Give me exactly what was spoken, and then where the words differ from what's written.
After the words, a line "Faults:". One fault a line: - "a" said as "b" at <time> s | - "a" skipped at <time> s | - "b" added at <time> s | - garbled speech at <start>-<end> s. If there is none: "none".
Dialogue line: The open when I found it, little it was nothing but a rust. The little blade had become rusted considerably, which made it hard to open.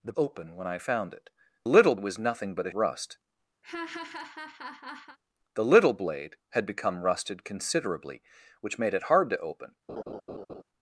The open when I found it, little it was nothing but a rust. The little blade had become rusted considerably, which made it hard to open.
Faults:
none